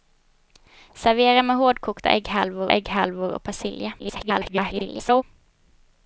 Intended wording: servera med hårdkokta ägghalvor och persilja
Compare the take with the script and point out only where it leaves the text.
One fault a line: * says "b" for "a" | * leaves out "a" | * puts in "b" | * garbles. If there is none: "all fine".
* puts in "ägghalvor"
* garbles